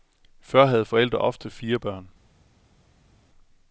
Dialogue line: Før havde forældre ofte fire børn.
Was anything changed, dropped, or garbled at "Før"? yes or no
no